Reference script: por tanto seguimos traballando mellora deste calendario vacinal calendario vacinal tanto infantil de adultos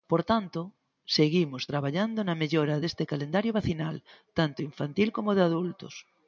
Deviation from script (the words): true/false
true